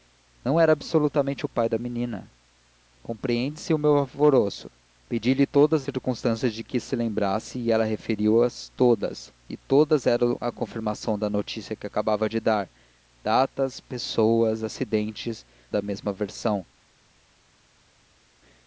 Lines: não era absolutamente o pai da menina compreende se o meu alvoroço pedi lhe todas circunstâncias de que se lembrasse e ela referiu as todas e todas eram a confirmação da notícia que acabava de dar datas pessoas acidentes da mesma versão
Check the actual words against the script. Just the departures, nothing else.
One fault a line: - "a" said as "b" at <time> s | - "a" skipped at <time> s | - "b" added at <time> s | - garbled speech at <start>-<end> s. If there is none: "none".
none